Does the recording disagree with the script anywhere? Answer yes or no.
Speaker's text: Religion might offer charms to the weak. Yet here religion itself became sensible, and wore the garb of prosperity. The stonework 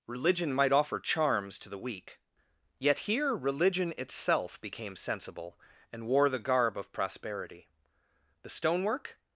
no